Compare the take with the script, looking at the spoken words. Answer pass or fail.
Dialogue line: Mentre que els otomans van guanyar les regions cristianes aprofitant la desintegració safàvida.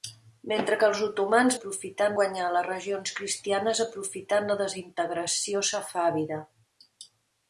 fail